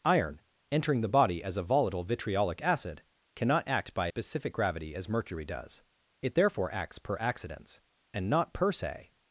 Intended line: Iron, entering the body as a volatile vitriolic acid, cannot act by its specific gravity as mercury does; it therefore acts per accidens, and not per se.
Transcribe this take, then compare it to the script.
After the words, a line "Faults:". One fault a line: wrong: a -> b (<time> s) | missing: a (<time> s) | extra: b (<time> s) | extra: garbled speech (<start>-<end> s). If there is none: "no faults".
Iron, entering the body as a volatile vitriolic acid, cannot act by specific gravity as mercury does; it therefore acts per accidens, and not per se.
Faults:
missing: its (4.1 s)